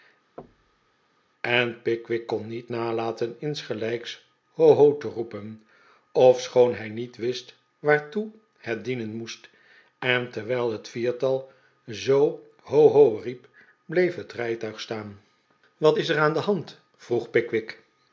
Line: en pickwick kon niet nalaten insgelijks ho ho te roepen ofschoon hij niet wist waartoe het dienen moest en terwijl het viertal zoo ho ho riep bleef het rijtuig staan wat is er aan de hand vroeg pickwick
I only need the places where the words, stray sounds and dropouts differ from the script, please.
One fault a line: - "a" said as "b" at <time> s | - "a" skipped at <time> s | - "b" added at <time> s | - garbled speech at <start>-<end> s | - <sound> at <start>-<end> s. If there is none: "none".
- thud at 0.4-1.0 s